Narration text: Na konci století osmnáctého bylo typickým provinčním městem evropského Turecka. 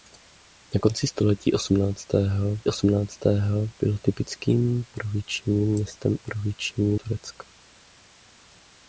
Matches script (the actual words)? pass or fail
fail